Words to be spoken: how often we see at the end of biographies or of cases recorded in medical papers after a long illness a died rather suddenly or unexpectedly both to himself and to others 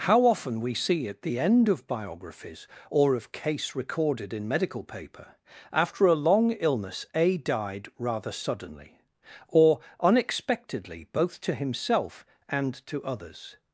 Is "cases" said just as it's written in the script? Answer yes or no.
no